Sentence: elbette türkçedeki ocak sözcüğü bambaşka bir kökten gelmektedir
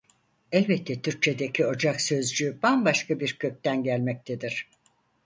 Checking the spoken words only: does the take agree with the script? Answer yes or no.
yes